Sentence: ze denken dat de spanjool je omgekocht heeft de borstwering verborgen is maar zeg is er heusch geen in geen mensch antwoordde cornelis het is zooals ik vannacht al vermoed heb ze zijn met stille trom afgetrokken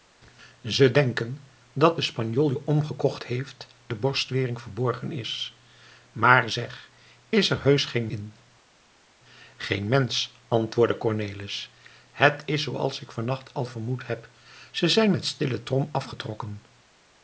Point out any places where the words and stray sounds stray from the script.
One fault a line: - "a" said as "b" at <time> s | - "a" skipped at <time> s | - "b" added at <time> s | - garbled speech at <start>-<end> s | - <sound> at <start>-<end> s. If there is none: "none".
none